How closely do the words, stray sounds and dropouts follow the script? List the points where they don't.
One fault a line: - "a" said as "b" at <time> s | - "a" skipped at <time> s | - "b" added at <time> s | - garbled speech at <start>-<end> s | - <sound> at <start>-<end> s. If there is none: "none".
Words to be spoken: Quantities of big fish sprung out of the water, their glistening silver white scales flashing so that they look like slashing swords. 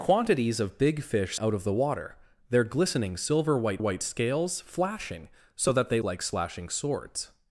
- "sprung" skipped at 1.4 s
- "white" added at 3.8 s
- "look" skipped at 6.0 s